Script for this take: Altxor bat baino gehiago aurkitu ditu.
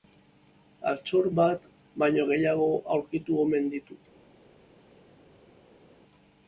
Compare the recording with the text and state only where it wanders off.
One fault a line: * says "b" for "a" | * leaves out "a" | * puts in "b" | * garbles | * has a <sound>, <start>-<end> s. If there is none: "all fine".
* puts in "omen"